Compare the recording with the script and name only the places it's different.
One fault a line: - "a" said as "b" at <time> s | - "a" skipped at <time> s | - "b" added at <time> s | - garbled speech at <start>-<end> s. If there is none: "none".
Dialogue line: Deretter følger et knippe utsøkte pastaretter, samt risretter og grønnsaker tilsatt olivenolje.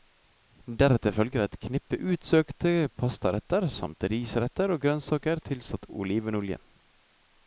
none